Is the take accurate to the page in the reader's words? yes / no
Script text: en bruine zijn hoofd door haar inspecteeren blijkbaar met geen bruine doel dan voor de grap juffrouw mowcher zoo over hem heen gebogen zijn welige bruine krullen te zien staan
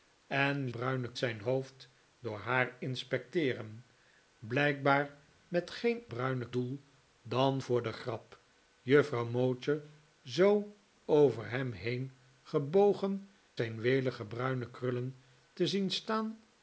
yes